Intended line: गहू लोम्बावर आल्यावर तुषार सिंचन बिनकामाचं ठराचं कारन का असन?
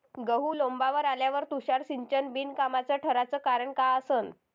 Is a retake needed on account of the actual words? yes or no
no